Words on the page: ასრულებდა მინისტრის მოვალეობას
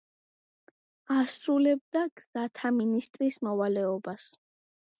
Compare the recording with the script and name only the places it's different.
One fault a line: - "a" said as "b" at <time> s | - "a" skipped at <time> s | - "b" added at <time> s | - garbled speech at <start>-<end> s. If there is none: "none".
- "გზათა" added at 2.2 s